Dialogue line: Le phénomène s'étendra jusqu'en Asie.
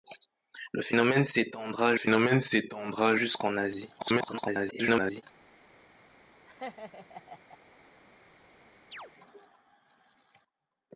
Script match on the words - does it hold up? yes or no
no